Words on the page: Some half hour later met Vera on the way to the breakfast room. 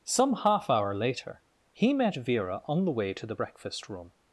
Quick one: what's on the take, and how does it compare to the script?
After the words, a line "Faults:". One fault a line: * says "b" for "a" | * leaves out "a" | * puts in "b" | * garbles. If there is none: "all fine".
Some half hour later he met Vera on the way to the breakfast room.
Faults:
* puts in "he"